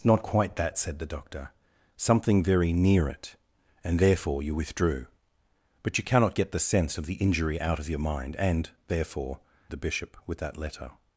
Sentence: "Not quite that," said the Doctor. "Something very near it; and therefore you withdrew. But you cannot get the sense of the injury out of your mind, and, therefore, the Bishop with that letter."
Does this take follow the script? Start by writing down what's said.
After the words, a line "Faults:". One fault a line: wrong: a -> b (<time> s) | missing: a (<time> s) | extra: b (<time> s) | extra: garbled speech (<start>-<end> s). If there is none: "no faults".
"Not quite that," said the Doctor. "Something very near it; and therefore you withdrew. But you cannot get the sense of the injury out of your mind, and, therefore, the Bishop with that letter."
Faults:
no faults